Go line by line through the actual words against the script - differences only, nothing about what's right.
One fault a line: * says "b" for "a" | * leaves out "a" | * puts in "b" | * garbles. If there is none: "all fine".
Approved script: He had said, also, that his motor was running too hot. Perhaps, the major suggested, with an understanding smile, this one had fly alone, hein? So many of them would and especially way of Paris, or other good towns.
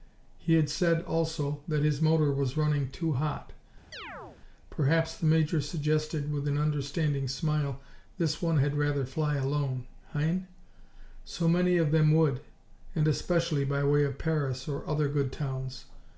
* puts in "rather"
* puts in "by"